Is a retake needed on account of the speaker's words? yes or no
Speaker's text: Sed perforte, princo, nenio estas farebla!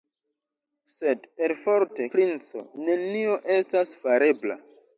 no